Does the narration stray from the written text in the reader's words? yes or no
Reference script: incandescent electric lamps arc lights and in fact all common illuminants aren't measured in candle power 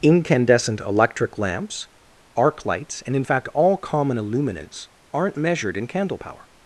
no